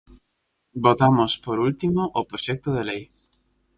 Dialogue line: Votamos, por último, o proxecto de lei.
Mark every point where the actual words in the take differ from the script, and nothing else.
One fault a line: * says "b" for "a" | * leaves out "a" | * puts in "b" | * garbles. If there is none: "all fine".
all fine